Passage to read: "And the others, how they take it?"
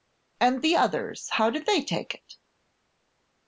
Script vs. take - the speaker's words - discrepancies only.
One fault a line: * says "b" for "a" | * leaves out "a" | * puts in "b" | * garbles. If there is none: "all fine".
* puts in "did"